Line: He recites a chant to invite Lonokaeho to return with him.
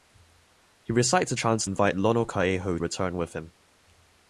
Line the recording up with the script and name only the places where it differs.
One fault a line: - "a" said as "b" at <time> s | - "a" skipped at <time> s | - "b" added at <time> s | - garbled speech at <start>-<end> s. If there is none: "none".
- "to" skipped at 1.6 s
- "to" skipped at 2.8 s